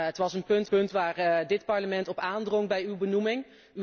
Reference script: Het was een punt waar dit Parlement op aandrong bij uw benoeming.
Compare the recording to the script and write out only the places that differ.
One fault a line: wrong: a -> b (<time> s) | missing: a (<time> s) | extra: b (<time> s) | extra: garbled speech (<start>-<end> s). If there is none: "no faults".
extra: punt (0.7 s)